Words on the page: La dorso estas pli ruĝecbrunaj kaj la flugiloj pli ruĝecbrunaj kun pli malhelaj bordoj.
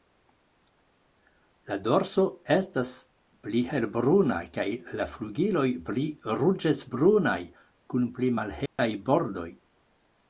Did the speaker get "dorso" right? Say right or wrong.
right